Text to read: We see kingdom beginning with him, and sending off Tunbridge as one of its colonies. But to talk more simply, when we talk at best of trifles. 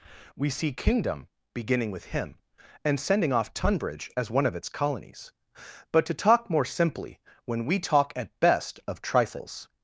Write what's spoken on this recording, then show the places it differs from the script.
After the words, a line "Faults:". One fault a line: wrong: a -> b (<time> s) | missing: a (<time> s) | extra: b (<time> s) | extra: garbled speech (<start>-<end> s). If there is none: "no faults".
We see kingdom beginning with him, and sending off Tunbridge as one of its colonies. But to talk more simply, when we talk at best of trifles.
Faults:
no faults